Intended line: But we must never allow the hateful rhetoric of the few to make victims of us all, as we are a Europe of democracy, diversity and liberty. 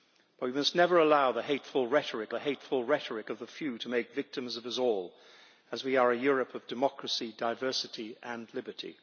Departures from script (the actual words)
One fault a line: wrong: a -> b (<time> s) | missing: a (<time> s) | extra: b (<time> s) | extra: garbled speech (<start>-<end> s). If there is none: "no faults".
extra: the hateful rhetoric (2.3 s)